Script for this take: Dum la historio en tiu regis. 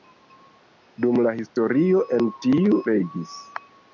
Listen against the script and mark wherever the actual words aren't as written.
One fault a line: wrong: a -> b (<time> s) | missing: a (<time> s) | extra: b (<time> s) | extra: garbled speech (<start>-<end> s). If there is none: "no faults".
no faults